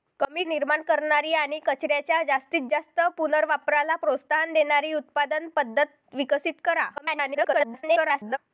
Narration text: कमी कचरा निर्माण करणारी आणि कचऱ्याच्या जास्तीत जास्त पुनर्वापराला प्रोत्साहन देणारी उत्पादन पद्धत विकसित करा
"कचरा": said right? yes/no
no